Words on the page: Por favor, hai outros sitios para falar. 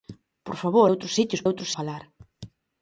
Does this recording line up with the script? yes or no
no